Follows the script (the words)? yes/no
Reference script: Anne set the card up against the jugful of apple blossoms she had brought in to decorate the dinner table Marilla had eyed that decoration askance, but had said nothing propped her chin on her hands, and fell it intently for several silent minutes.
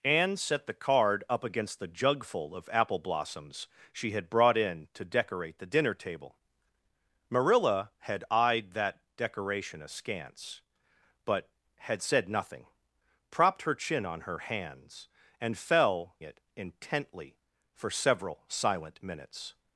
yes